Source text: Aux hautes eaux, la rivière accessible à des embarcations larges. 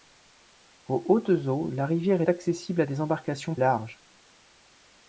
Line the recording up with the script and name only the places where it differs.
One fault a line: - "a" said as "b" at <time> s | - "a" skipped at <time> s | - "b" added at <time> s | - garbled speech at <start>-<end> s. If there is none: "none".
none